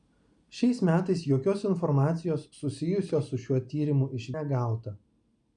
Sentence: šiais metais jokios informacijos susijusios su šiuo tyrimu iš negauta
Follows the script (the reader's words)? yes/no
yes